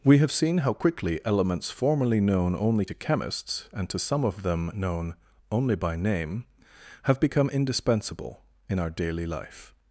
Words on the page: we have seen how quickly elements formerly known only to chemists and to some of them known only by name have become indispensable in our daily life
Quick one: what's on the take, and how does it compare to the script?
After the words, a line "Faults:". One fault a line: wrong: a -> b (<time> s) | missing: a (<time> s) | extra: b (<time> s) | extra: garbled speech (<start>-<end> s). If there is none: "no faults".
we have seen how quickly elements formerly known only to chemists and to some of them known only by name have become indispensable in our daily life
Faults:
no faults